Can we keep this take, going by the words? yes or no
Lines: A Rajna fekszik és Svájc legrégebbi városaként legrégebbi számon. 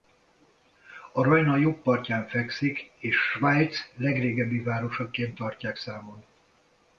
no